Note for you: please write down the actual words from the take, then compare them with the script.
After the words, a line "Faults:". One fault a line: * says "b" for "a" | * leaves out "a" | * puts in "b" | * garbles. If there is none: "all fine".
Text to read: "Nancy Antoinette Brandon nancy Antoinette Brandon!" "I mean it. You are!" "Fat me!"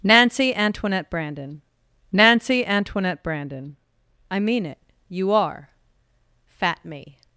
"Nancy Antoinette Brandon nancy Antoinette Brandon!" "I mean it. You are!" "Fat me!"
Faults:
all fine